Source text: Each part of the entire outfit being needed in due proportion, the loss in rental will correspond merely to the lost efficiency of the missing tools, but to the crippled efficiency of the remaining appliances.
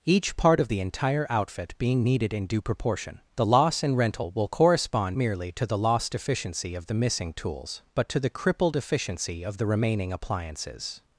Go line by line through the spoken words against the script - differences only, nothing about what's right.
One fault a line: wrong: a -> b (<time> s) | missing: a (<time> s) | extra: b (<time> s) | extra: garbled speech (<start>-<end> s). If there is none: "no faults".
no faults